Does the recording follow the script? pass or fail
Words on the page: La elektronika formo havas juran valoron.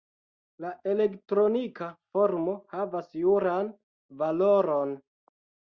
pass